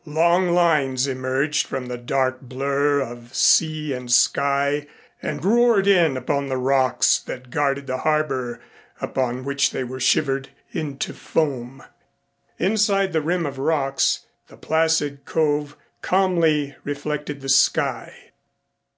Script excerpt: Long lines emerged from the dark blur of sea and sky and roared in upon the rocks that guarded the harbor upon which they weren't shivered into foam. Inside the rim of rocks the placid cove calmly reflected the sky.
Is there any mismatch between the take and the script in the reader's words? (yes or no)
yes